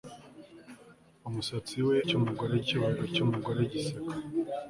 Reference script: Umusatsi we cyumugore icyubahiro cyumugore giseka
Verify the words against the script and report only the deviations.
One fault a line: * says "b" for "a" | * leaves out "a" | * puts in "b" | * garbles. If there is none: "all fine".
all fine